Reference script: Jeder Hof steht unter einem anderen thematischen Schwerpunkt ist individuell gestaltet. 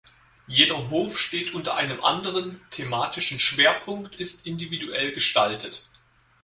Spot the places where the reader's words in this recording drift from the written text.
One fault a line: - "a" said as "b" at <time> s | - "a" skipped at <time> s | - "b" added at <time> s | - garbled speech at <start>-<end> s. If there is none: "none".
none